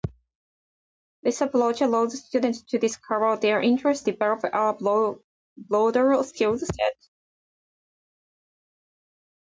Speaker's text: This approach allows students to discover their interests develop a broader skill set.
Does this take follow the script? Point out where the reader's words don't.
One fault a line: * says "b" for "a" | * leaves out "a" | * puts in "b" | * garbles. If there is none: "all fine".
all fine